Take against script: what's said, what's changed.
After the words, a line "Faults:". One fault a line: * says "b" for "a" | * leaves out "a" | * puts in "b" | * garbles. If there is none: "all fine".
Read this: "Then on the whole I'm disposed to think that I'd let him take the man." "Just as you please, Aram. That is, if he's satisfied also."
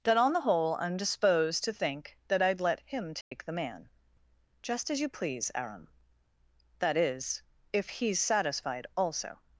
"That on the whole I'm disposed to think that I'd let him take the man." "Just as you please, Aram. That is, if he's satisfied also."
Faults:
* says "That" for "Then"